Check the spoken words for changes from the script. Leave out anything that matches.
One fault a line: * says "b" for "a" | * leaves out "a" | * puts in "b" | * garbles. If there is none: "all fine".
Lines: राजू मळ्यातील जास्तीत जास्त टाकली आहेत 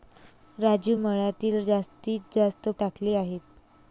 all fine